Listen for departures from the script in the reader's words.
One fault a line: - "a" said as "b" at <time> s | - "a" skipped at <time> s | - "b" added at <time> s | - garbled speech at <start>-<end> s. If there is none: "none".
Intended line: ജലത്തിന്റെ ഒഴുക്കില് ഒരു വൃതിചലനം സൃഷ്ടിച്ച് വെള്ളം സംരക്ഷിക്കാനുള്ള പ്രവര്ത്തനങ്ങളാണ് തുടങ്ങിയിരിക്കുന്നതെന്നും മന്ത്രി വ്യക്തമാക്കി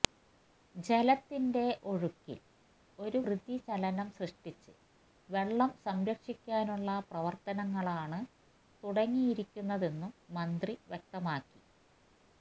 none